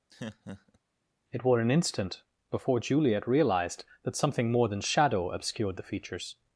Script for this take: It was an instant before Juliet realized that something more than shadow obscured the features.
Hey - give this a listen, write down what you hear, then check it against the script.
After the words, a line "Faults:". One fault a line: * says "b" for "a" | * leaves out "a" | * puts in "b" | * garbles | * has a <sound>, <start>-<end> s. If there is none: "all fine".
It were an instant before Juliet realized that something more than shadow obscured the features.
Faults:
* has a laugh, 0.1-0.8 s
* says "were" for "was"